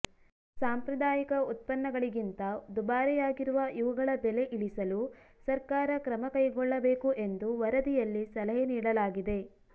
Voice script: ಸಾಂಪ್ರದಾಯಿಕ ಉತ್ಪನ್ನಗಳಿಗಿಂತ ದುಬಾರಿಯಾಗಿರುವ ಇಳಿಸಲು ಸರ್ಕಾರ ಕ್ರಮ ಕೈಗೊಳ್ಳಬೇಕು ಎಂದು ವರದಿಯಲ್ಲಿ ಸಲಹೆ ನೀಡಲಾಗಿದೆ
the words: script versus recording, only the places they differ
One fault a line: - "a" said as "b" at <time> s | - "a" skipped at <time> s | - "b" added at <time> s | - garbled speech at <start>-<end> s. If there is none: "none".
- "ಇವುಗಳ ಬೆಲೆ" added at 3.8 s